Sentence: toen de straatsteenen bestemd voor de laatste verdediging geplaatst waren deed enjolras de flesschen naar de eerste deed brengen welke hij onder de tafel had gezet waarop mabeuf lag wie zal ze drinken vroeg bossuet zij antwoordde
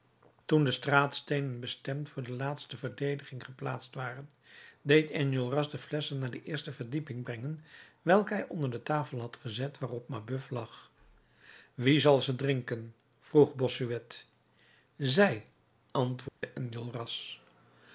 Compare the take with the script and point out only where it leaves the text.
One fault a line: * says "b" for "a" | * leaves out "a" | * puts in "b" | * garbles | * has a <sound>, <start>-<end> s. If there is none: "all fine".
* says "verdieping" for "deed"
* has a dropout, 16.3-16.4 s